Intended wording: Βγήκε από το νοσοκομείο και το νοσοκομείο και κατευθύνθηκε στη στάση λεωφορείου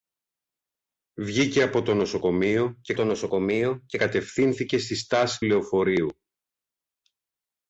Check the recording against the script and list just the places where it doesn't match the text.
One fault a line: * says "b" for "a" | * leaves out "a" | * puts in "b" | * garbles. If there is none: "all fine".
all fine